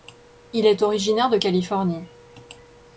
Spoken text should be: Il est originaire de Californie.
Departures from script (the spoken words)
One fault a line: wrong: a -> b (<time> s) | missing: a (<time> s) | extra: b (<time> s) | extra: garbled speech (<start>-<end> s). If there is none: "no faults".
no faults